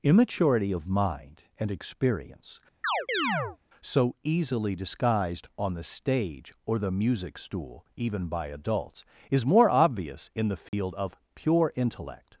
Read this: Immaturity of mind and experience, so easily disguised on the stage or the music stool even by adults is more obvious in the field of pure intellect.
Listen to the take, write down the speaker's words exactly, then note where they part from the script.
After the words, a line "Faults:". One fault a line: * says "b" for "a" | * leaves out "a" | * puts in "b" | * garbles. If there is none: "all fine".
Immaturity of mind and experience, so easily disguised on the stage or the music stool even by adults is more obvious in the field of pure intellect.
Faults:
all fine